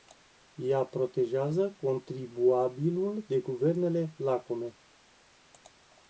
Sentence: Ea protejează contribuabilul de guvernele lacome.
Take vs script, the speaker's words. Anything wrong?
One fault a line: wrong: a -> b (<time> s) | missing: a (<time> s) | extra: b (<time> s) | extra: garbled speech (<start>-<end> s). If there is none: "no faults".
no faults